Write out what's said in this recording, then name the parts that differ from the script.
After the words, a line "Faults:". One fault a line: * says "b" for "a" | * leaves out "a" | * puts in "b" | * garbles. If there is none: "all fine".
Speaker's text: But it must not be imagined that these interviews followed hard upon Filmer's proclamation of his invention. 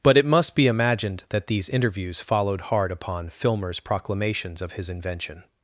But it must be imagined that these interviews followed hard upon Filmer's proclamations of his invention.
Faults:
* leaves out "not"
* says "proclamations" for "proclamation"